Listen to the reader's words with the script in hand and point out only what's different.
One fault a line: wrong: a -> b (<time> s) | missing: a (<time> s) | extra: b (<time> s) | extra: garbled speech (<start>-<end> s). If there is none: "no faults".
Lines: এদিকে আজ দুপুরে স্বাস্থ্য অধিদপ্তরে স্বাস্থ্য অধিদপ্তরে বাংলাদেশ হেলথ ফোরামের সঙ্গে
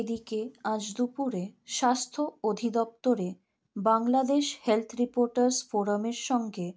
missing: স্বাস্থ্য অধিদপ্তরে (3.3 s)
extra: রিপোর্টার্স (5.0 s)